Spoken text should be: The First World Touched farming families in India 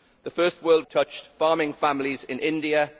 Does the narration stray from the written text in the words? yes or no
no